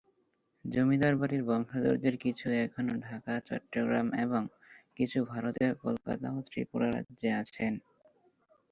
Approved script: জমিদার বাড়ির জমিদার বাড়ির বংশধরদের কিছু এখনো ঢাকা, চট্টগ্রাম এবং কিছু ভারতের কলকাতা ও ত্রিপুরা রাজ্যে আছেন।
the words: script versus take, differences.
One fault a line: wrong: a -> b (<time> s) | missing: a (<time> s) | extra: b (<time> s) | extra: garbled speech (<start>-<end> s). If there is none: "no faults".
missing: জমিদার বাড়ির (1.4 s)